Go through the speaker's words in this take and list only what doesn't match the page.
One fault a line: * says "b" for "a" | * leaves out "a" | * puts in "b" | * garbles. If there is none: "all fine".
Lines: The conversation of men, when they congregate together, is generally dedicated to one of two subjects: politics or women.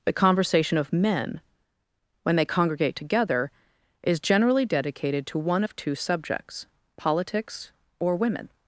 all fine